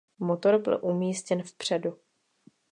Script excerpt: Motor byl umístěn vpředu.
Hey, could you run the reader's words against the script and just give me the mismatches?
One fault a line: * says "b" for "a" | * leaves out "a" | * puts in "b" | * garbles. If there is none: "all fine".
all fine